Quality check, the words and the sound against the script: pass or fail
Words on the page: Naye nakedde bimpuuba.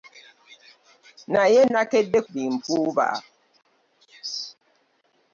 pass